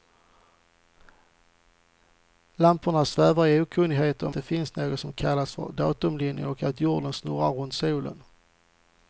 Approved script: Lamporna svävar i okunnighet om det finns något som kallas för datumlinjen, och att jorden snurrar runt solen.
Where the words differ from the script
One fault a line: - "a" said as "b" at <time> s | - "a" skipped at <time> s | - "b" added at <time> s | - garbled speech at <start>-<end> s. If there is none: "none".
none